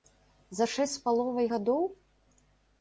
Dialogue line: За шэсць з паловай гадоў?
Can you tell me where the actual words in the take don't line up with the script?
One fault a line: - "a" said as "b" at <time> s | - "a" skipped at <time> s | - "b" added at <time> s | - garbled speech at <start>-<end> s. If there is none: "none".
none